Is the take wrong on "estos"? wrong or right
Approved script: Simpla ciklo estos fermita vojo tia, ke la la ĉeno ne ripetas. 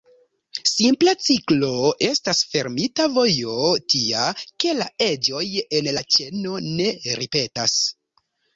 wrong